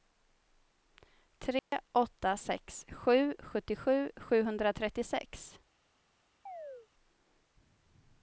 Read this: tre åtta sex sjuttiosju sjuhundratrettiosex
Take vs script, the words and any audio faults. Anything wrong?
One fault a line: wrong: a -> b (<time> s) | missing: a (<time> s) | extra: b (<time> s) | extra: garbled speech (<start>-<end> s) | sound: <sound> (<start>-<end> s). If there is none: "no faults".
sound: dropout (1.6-1.7 s)
extra: sju (2.9 s)
sound: chirp (6.5-6.9 s)